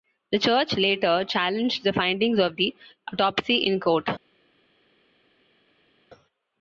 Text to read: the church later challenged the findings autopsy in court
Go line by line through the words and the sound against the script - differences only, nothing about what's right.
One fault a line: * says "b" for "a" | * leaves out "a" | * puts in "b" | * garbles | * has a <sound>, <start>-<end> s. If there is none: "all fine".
* puts in "of the"